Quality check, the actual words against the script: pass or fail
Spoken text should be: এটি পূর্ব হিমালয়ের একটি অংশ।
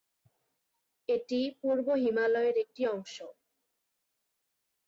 pass